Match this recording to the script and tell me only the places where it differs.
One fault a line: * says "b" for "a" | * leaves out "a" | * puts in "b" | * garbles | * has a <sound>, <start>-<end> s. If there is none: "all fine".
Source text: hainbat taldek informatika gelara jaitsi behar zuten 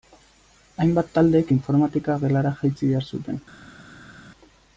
all fine